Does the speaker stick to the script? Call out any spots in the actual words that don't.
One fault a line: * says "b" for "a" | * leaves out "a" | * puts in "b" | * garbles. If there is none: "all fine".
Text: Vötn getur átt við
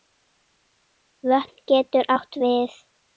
all fine